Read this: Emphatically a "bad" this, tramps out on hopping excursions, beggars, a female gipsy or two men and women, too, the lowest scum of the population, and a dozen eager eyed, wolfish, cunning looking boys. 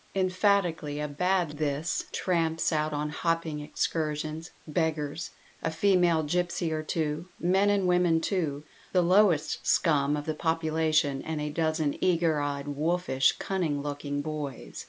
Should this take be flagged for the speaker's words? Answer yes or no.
no